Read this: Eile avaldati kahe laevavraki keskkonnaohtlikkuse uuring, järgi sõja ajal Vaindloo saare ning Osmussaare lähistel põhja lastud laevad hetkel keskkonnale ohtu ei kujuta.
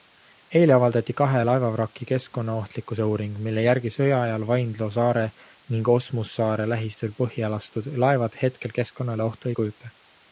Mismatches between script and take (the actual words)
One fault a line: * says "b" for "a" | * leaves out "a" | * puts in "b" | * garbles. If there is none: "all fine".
* puts in "mille"